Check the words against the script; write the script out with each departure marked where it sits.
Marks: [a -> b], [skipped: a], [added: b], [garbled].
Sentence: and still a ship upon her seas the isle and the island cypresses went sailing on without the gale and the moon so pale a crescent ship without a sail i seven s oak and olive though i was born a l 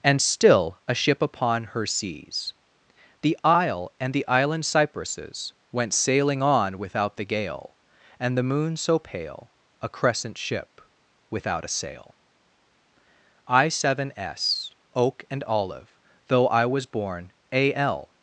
and still a ship upon her seas the isle and the island cypresses went sailing on without the gale and the moon so pale a crescent ship without a sail i seven s oak and olive though i was born a l